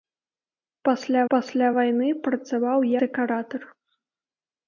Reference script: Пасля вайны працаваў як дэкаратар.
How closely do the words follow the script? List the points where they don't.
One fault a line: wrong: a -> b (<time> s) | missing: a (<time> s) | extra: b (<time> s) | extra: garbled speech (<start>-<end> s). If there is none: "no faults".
extra: пасля (1.3 s)
missing: як (2.8 s)